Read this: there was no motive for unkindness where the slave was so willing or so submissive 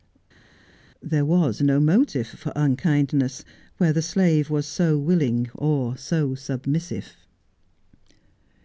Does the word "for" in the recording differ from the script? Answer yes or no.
no